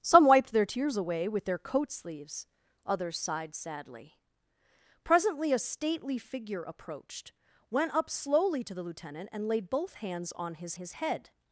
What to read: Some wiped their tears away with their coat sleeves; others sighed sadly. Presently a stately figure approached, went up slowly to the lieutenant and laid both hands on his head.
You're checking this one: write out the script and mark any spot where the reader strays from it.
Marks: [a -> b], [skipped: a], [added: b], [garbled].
Some wiped their tears away with their coat sleeves; others sighed sadly. Presently a stately figure approached, went up slowly to the lieutenant and laid both hands on his [added: his] head.